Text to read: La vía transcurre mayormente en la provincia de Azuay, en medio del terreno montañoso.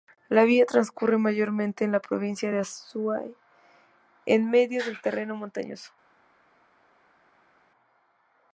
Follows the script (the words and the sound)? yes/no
yes